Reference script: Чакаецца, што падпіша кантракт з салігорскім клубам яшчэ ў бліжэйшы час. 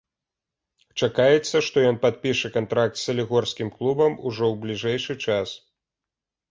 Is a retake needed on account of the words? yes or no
yes